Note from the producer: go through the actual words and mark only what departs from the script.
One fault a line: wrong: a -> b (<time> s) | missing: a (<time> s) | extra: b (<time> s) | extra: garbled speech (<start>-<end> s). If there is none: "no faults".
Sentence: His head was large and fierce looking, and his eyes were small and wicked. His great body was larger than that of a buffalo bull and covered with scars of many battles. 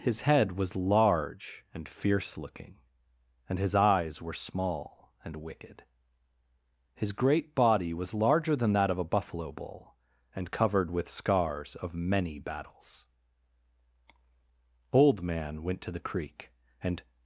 extra: Old man went to the creek and (14.9 s)